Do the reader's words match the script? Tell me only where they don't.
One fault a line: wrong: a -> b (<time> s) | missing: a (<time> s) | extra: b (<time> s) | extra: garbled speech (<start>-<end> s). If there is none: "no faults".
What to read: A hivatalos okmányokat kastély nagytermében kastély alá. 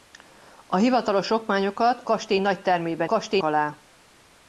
no faults